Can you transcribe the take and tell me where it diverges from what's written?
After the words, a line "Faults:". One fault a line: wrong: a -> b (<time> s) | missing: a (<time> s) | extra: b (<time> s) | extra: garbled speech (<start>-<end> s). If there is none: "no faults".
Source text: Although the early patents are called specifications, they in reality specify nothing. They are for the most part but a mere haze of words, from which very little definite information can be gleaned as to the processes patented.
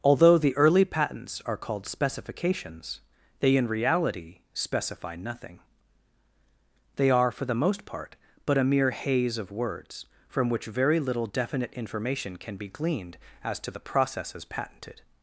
Although the early patents are called specifications, they in reality specify nothing. They are for the most part but a mere haze of words, from which very little definite information can be gleaned as to the processes patented.
Faults:
no faults